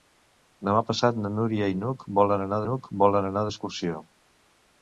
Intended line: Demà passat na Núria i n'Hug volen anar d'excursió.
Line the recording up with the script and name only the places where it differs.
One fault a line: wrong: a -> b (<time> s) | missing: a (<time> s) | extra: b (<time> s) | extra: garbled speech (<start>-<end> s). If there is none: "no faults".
extra: n'Hug volen anar (2.7 s)